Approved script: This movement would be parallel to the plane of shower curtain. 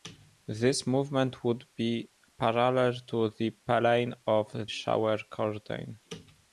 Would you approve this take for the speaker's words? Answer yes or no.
yes